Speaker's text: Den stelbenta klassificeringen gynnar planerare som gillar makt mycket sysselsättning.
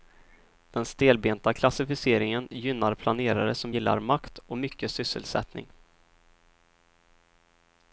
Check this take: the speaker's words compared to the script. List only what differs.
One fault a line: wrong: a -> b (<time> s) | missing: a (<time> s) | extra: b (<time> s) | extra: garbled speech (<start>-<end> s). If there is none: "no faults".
extra: och (4.5 s)